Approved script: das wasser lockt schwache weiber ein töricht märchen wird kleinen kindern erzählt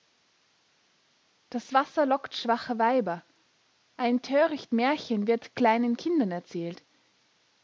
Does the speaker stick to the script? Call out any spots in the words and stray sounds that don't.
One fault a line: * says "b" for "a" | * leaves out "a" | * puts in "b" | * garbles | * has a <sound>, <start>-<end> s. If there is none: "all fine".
all fine